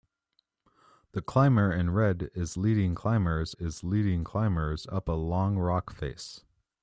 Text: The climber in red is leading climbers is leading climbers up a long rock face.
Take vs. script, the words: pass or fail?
pass